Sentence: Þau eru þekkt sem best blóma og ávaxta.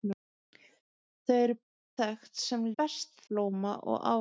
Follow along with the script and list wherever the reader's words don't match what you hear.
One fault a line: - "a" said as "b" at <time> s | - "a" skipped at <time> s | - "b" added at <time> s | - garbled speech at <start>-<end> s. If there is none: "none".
none